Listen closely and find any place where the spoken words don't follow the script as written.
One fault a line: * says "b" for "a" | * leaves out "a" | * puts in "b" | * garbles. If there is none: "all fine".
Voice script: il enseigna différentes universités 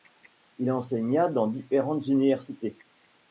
* puts in "dans"